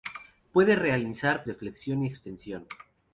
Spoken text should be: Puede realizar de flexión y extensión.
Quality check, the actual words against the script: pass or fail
pass